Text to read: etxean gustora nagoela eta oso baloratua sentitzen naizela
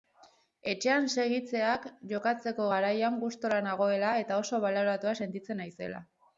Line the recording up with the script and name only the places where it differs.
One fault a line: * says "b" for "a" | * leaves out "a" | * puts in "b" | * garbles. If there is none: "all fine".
* puts in "segitzeak jokatzeko garaian"